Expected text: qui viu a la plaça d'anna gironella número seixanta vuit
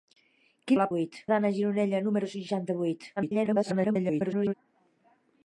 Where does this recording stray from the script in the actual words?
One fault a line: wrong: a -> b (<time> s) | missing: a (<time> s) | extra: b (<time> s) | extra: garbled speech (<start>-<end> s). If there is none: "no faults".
missing: viu (0.8 s)
wrong: plaça -> vuit (0.9 s)
extra: garbled speech (3.2-4.5 s)